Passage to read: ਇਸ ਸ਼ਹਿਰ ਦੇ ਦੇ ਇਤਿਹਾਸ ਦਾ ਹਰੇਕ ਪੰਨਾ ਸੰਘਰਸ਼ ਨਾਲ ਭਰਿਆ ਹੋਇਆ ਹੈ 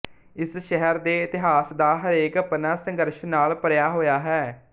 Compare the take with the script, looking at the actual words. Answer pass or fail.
fail